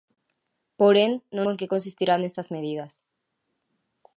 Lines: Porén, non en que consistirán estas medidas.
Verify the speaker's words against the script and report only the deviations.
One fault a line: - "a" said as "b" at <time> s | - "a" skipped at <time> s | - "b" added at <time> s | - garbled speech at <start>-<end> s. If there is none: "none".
none